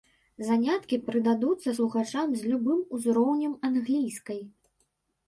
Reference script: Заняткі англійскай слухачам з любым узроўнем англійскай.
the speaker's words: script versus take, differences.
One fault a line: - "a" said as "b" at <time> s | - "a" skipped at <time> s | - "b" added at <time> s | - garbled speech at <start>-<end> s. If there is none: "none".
- "англійскай" said as "прыдадуцца" at 1.1 s